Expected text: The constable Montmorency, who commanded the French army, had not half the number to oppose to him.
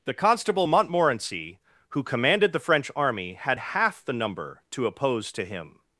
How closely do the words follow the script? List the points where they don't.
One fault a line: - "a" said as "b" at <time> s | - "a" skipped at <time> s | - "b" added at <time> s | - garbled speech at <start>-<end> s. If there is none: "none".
- "not" skipped at 3.6 s